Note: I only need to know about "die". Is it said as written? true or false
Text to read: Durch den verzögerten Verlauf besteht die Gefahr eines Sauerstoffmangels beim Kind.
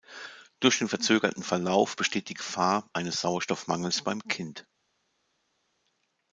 true